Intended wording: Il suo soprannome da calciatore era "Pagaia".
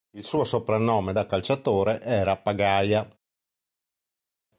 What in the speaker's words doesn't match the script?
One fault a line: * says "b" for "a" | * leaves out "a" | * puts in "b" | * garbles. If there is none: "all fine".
all fine